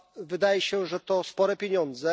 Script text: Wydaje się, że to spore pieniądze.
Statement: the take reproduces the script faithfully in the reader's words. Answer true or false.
true